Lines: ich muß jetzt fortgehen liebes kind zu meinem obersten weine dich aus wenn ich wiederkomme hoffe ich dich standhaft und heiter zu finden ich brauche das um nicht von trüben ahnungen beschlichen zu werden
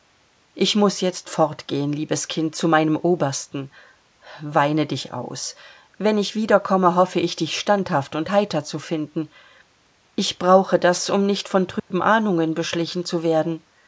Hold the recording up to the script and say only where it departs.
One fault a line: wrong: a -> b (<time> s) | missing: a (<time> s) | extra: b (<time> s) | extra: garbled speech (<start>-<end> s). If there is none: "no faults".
no faults